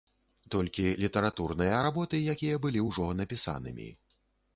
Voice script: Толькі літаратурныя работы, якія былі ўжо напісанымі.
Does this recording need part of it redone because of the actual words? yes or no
no